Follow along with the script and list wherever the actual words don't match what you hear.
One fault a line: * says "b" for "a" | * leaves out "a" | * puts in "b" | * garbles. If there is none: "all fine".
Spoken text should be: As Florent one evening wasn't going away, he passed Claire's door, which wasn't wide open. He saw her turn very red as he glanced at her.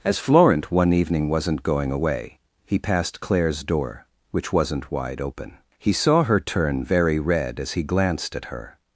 all fine